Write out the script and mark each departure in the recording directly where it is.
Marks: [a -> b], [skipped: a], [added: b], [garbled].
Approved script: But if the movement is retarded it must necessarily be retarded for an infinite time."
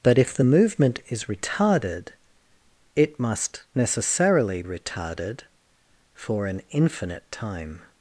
But if the movement is retarded it must necessarily [skipped: be] retarded for an infinite time."